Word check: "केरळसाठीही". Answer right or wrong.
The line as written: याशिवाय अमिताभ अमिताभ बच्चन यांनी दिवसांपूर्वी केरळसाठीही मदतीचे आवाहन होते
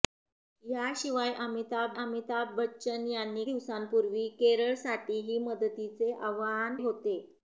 right